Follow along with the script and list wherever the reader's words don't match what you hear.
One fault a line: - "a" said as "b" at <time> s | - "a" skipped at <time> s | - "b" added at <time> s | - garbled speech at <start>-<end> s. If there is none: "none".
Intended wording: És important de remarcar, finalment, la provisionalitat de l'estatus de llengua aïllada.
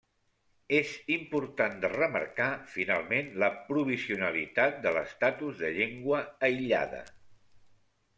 none